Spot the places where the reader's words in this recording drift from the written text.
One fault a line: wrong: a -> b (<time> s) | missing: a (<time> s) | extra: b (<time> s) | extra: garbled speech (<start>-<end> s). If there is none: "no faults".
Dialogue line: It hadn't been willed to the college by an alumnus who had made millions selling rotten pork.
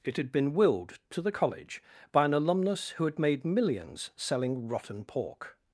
wrong: hadn't -> had (0.2 s)